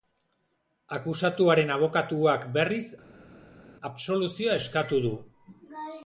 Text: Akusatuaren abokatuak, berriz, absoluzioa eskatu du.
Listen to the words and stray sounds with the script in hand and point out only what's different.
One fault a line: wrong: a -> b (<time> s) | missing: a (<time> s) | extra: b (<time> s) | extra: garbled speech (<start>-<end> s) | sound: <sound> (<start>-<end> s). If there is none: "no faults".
no faults